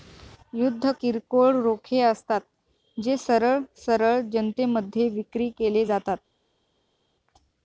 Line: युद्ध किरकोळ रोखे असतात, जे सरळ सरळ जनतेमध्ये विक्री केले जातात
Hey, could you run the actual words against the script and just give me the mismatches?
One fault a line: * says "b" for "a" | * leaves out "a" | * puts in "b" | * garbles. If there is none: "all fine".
all fine